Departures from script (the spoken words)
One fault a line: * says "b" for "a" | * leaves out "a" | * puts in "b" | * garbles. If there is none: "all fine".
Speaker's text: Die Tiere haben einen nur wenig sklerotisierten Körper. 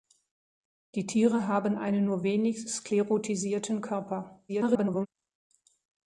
* garbles